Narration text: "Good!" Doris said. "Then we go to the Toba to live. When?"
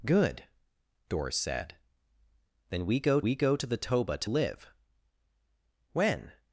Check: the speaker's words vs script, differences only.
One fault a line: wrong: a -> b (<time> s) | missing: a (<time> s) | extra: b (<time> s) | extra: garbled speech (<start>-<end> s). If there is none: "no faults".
extra: we go (3.2 s)